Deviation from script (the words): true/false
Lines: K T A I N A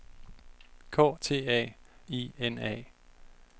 false